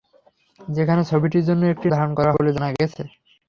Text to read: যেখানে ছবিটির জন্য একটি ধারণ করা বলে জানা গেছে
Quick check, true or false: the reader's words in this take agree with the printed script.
true